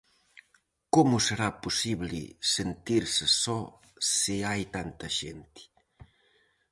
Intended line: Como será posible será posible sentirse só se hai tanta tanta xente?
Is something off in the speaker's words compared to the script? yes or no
yes